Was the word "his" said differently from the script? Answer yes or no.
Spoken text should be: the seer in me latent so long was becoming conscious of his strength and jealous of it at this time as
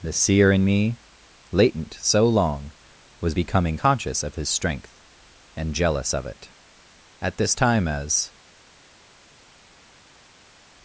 no